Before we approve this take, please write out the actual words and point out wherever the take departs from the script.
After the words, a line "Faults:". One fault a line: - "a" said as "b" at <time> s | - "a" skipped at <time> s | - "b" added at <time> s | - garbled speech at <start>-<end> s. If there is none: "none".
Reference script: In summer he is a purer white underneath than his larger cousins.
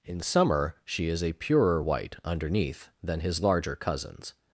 In summer she is a purer white underneath than his larger cousins.
Faults:
- "he" said as "she" at 0.8 s